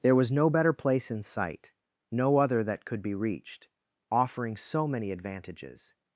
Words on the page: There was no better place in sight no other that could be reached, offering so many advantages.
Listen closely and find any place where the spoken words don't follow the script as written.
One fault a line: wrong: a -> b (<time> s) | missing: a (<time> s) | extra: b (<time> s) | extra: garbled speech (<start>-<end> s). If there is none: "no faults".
no faults